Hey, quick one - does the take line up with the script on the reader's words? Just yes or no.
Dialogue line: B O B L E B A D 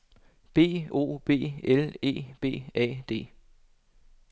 yes